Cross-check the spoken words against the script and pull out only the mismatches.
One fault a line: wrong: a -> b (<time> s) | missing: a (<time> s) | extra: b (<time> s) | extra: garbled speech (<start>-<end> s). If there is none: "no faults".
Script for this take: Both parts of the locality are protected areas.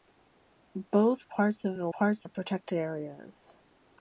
wrong: locality -> parts (1.9 s)